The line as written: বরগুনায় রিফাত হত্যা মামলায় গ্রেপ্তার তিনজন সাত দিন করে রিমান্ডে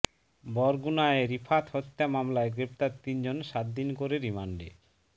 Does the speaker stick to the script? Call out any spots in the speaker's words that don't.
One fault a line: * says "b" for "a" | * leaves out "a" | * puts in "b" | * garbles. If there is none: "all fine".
all fine